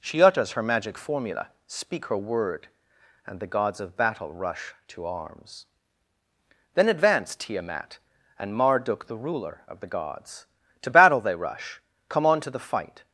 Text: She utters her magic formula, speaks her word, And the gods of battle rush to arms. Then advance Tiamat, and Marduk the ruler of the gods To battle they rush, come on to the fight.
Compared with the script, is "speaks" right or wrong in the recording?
wrong